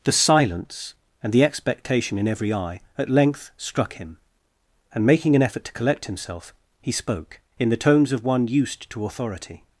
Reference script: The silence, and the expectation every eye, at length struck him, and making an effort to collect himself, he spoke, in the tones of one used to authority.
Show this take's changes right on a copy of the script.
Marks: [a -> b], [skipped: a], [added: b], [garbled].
The silence, and the expectation [added: in] every eye, at length struck him, and making an effort to collect himself, he spoke, in the tones of one used to authority.